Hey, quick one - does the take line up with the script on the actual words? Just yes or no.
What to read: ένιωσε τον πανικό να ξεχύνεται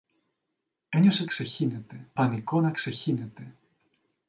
no